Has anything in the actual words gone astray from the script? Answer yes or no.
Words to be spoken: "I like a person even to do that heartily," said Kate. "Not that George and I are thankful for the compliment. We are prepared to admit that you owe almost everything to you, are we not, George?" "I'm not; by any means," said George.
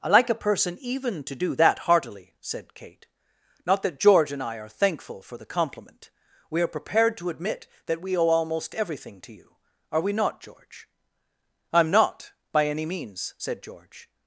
yes